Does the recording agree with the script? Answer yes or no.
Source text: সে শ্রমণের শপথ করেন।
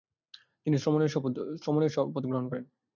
no